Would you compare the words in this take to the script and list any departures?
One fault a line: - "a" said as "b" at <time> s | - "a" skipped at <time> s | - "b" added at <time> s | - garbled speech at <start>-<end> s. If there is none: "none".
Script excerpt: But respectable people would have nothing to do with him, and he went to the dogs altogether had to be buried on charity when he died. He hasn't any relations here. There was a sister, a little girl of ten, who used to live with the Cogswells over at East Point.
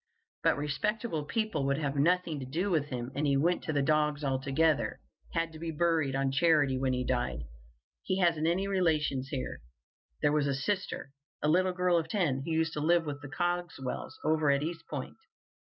none